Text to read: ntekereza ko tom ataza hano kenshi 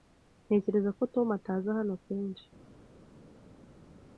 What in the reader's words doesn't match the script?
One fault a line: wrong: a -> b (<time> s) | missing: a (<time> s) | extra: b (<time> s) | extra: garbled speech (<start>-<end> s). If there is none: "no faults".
no faults